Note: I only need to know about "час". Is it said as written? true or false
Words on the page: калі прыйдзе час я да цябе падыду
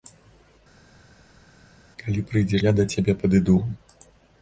false